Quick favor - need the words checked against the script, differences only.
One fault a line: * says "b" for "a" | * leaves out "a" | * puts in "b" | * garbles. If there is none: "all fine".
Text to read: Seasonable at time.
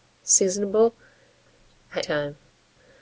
all fine